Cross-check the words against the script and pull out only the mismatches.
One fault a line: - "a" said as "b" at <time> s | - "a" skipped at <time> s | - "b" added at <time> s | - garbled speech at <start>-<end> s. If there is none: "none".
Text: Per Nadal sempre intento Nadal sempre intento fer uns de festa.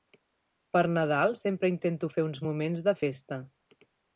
- "Nadal sempre intento" skipped at 2.1 s
- "moments" added at 2.5 s